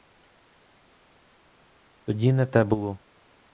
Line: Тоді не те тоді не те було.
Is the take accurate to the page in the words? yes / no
no